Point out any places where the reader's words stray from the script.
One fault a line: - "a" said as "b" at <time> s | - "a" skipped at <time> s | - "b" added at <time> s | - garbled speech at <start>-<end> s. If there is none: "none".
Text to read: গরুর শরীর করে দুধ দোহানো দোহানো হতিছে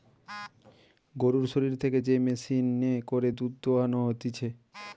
- "থেকে যে মেশিনে" added at 1.8 s
- "দোহানো" skipped at 4.0 s